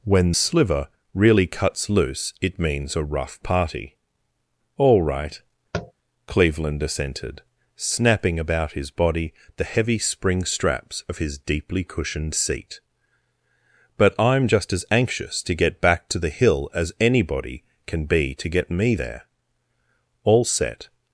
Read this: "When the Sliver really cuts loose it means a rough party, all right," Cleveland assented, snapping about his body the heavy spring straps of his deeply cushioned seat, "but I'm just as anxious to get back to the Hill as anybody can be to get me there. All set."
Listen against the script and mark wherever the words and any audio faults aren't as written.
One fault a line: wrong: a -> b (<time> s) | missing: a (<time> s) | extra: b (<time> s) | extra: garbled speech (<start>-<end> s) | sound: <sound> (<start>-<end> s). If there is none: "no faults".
missing: the (0.3 s)
sound: tap (5.7-5.9 s)